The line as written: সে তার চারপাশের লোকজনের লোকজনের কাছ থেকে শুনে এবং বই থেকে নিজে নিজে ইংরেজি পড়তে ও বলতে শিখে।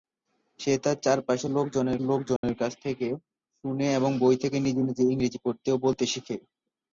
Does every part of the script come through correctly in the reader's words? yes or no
yes